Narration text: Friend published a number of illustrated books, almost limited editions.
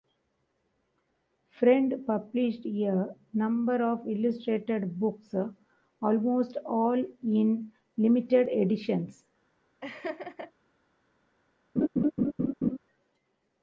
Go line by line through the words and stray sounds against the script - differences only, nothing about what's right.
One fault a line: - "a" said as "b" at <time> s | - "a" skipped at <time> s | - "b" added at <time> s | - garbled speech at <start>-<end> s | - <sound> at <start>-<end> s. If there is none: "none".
- "all in" added at 6.6 s
- laugh at 9.8-10.5 s
- laugh at 11.8-12.8 s